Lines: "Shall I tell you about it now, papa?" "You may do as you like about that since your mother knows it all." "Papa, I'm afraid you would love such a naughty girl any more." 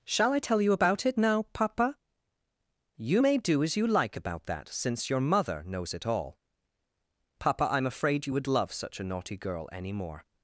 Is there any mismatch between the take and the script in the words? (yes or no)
no